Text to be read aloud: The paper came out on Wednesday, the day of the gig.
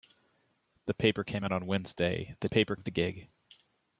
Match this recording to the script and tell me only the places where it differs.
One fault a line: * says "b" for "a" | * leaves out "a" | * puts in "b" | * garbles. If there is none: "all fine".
* says "paper" for "day"